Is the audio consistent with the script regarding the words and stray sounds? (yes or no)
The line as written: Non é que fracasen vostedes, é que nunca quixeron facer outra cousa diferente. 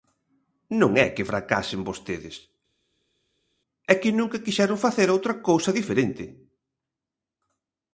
yes